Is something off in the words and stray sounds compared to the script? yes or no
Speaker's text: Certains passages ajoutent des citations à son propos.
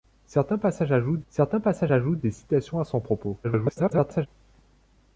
yes